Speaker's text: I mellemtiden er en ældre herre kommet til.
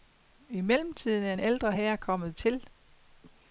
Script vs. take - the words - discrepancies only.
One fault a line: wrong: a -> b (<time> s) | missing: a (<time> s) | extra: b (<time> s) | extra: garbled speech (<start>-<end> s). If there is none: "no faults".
no faults